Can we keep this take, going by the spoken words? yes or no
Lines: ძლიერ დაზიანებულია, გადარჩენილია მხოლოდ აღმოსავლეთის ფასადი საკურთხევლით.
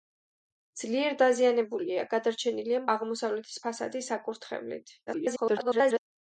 no